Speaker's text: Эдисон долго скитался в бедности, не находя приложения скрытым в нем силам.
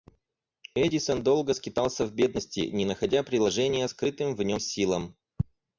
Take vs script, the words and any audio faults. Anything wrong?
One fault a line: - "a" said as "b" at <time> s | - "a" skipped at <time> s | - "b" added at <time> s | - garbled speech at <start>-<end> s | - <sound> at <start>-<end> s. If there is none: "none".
none